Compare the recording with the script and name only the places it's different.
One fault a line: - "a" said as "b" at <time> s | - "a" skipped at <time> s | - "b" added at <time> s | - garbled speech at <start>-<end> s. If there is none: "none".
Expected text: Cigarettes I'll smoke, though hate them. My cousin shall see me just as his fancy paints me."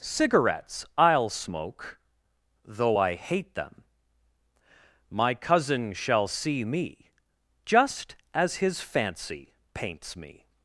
- "I" added at 2.9 s